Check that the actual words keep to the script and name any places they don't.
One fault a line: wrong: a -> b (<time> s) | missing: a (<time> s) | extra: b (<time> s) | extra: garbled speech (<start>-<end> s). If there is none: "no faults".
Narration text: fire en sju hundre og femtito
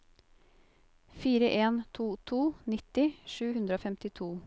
extra: to to nitti (1.9 s)